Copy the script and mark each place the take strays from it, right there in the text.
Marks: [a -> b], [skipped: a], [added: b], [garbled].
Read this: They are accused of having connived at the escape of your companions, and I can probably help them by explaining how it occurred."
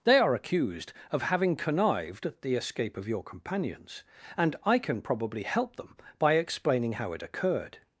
They are accused of having connived at the escape of your companions, and I can probably help them by explaining how it occurred."